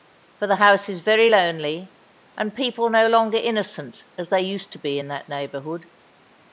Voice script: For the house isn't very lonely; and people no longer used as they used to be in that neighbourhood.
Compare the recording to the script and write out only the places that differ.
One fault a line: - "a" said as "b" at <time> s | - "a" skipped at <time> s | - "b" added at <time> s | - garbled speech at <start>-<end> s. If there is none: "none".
- "isn't" said as "is" at 0.9 s
- "used" said as "innocent" at 3.4 s